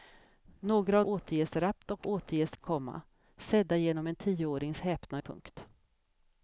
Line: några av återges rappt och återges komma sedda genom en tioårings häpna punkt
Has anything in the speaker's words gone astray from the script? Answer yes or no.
no